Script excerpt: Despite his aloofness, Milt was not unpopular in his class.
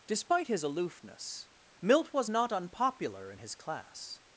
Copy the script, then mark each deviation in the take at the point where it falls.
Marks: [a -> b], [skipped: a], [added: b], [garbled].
Despite his aloofness, Milt was not unpopular in his class.